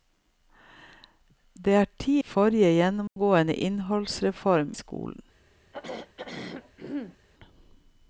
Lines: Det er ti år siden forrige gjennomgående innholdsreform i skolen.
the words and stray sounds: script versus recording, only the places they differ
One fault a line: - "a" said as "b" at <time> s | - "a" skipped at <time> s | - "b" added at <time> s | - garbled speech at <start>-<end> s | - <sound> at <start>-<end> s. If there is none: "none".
- "år siden" skipped at 2.1 s
- dropout at 3.1-3.2 s
- "i" skipped at 4.7 s
- throat clearing at 5.7-7.2 s